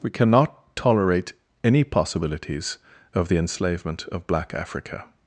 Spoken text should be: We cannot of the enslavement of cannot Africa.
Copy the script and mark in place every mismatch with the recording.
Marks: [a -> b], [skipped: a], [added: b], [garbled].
We cannot [added: tolerate any possibilities] of the enslavement of [cannot -> black] Africa.